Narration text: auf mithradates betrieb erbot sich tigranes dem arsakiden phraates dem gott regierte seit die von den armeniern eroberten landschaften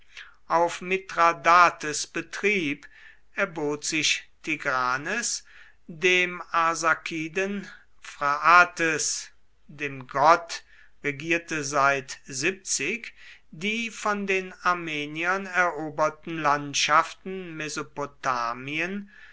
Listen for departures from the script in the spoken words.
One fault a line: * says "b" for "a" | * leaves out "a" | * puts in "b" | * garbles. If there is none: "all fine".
all fine